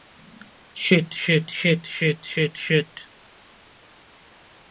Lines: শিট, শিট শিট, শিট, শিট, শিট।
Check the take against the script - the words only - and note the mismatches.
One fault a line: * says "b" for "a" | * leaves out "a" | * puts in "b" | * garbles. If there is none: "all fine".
all fine